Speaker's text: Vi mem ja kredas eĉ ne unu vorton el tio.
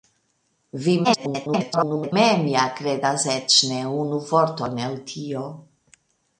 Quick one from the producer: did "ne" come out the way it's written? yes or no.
yes